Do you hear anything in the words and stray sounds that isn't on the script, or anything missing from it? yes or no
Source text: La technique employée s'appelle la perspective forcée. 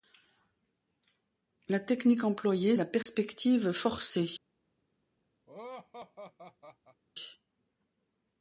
yes